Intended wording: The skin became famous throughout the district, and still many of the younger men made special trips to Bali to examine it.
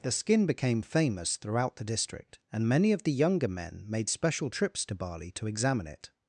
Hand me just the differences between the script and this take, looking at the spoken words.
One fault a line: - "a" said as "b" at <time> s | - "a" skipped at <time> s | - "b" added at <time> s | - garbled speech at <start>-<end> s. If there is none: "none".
- "still" skipped at 2.7 s